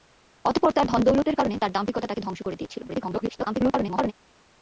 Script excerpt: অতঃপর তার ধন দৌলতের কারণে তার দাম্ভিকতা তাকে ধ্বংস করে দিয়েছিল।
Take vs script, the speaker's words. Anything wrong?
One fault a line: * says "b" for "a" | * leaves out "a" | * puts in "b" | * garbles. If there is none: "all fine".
* garbles